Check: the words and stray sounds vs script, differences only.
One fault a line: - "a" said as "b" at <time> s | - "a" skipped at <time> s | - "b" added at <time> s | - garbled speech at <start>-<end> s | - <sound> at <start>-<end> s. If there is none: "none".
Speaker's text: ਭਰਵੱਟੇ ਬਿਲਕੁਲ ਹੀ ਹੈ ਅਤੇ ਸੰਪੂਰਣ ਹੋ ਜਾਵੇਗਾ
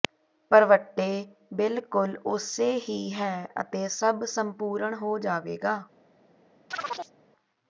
- "ਉਸੇ" added at 2.3 s
- "ਸਭ" added at 3.9 s
- chirp at 6.7-7.1 s